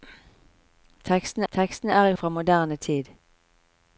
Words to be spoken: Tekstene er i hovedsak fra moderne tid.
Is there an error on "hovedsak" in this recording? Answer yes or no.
yes